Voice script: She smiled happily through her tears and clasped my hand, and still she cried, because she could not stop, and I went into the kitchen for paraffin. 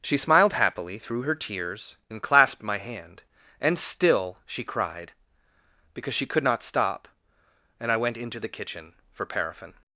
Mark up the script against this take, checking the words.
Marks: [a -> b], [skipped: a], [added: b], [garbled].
She smiled happily through her tears and clasped my hand, and still she cried, because she could not stop, and I went into the kitchen for paraffin.